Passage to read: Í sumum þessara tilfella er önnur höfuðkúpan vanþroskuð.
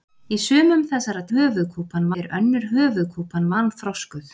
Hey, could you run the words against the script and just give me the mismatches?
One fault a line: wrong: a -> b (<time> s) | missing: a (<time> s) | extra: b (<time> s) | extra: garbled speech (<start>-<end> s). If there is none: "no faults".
wrong: tilfella -> höfuðkúpan (1.3 s)